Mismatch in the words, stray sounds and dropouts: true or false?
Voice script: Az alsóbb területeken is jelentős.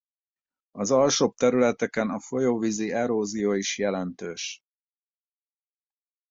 true